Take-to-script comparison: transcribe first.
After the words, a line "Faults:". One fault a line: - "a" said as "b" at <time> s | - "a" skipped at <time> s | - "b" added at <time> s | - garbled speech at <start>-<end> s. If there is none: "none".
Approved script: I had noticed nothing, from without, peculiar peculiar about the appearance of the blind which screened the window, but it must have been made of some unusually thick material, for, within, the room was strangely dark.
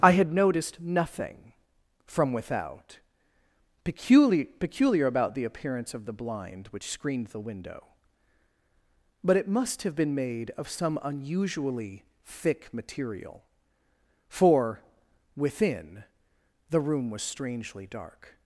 I had noticed nothing, from without, peculiar peculiar about the appearance of the blind which screened the window, but it must have been made of some unusually thick material, for, within, the room was strangely dark.
Faults:
none